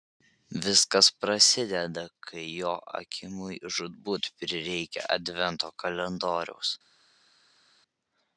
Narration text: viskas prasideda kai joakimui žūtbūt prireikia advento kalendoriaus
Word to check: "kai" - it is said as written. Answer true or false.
true